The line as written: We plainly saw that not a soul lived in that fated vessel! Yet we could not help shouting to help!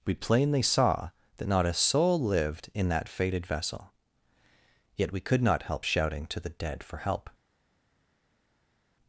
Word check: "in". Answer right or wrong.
right